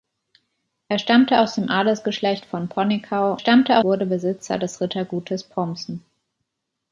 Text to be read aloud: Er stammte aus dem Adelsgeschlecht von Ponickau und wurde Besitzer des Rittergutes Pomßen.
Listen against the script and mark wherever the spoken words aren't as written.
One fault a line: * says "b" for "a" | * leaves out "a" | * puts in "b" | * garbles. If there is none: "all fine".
* says "stammte" for "und"